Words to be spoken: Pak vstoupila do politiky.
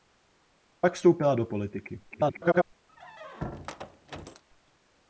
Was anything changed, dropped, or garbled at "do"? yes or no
no